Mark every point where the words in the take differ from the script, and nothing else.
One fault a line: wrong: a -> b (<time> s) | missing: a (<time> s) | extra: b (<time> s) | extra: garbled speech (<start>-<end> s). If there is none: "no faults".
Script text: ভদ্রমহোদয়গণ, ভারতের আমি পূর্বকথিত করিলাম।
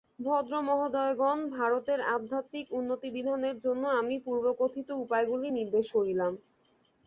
extra: আধ্যাত্মিক উন্নতিবিধানের জন্য (2.1 s)
extra: উপায়গুলি নির্দেশ (5.0 s)